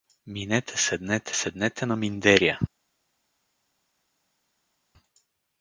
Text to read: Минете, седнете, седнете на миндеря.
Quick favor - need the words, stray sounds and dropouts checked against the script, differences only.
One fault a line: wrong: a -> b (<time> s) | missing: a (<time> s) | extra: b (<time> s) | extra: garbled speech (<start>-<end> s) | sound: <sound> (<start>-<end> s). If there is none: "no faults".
no faults